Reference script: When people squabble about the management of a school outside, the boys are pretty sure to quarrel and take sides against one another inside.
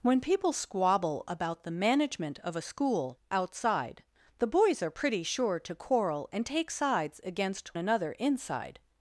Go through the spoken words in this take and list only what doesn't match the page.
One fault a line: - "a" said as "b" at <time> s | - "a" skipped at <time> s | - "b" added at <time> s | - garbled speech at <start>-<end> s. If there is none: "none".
- "one" skipped at 7.7 s